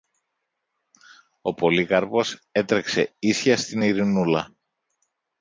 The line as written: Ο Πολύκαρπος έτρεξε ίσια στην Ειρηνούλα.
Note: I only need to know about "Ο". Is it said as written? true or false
true